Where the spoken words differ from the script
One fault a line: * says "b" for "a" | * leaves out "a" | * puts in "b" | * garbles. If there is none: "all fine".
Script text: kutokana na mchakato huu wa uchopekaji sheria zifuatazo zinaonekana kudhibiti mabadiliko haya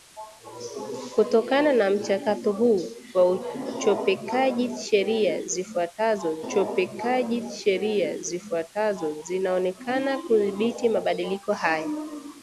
* puts in "uchopekaji sheria zifuatazo"